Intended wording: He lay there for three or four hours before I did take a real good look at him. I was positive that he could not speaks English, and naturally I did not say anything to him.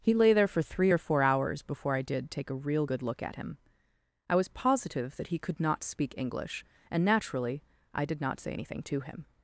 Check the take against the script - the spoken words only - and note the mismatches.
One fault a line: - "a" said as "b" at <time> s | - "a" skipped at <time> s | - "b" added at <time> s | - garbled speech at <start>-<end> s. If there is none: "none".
- "speaks" said as "speak" at 5.8 s